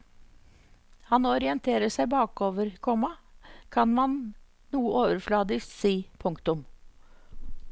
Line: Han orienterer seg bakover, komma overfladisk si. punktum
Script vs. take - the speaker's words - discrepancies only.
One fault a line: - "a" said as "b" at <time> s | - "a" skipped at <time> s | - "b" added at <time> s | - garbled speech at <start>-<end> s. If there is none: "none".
- "kan man noe" added at 3.8 s